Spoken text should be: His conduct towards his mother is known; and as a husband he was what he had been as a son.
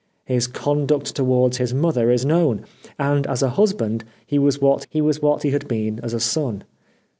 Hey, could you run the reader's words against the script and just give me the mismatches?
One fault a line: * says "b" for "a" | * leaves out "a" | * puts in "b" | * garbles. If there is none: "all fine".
* puts in "was what he"